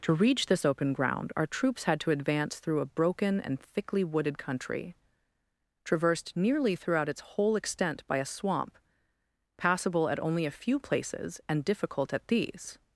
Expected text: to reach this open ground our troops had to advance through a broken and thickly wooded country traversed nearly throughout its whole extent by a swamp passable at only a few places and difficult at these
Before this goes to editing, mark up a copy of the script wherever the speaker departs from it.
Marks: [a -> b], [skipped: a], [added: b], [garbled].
to reach this open ground our troops had to advance through a broken and thickly wooded country traversed nearly throughout its whole extent by a swamp passable at only a few places and difficult at these